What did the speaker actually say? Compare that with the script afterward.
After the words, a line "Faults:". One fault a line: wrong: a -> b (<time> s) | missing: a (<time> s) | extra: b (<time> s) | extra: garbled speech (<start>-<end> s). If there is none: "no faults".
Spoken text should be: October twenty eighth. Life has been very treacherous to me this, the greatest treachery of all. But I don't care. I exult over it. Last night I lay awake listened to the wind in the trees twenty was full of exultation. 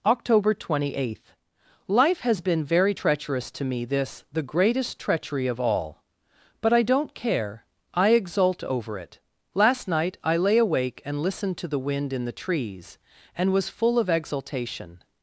October twenty eighth. Life has been very treacherous to me this, the greatest treachery of all. But I don't care. I exult over it. Last night I lay awake and listened to the wind in the trees and was full of exultation.
Faults:
extra: and (11.0 s)
wrong: twenty -> and (13.3 s)